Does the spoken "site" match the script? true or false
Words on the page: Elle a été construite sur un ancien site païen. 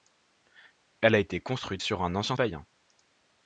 false